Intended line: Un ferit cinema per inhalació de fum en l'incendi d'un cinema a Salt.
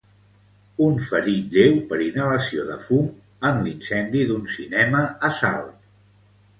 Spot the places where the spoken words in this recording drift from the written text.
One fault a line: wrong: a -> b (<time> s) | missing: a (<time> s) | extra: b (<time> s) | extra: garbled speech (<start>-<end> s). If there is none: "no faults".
wrong: cinema -> lleu (1.6 s)